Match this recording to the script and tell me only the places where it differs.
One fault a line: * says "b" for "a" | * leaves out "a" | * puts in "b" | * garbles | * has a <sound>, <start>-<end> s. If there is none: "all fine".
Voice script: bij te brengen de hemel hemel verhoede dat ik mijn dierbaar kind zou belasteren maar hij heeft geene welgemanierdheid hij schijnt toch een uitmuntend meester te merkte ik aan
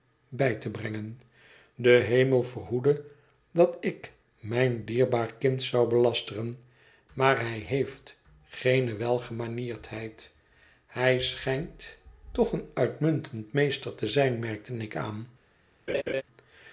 * leaves out "hemel"
* puts in "zijn"
* has a laugh, 15.9-16.2 s